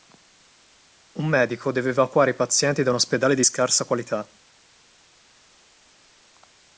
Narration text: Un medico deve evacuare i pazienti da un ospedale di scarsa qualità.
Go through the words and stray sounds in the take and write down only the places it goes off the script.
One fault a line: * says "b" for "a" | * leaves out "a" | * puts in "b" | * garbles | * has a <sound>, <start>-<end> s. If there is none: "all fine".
all fine